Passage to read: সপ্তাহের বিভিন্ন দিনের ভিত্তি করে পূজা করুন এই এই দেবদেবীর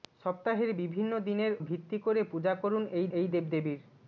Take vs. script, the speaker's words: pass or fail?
pass